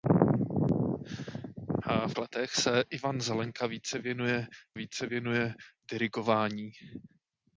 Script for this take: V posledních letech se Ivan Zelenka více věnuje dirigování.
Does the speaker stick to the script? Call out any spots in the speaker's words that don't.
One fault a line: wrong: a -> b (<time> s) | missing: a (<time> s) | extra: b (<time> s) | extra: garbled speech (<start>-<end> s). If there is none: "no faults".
missing: posledních (2.1 s)
extra: více věnuje (4.7 s)